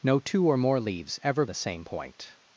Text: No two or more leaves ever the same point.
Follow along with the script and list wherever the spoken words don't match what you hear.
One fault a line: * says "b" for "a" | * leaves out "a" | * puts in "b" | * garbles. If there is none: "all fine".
all fine